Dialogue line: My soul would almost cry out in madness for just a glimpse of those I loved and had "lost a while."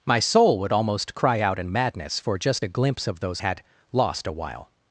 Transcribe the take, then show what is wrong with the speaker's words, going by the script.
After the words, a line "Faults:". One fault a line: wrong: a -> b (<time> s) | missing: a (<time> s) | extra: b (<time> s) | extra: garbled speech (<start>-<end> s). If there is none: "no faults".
My soul would almost cry out in madness for just a glimpse of those had "lost a while."
Faults:
missing: I loved and (3.4 s)